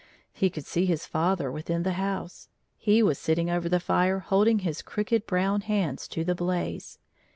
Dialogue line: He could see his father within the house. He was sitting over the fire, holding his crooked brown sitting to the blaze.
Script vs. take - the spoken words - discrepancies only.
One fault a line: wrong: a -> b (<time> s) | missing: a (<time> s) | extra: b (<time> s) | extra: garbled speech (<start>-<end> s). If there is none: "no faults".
wrong: sitting -> hands (5.6 s)